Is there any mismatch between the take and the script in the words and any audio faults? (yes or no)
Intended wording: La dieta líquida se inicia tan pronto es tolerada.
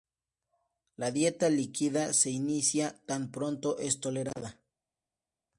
no